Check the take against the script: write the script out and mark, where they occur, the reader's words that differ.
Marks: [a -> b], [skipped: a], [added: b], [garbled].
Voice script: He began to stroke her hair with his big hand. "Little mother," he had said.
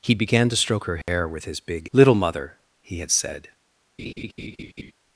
He began to stroke her hair with his big [skipped: hand.] "Little mother," he had said.